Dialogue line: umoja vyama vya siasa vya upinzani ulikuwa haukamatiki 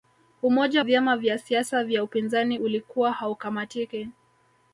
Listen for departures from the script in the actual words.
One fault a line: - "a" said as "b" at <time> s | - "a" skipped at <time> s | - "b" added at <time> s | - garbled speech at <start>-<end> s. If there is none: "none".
none